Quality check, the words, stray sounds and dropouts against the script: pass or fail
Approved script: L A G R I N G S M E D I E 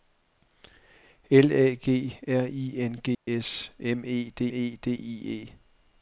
fail